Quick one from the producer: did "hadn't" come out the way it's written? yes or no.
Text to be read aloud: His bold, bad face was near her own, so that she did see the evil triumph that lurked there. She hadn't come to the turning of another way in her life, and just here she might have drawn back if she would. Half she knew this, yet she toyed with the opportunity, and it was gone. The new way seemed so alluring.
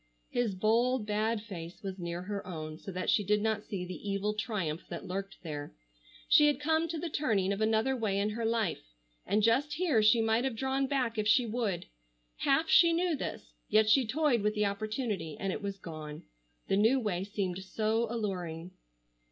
no